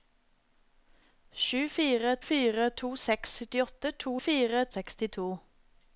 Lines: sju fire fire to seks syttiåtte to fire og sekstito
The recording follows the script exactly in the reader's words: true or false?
true